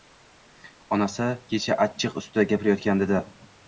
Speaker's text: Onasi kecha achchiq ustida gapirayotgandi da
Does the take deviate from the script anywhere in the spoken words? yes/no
no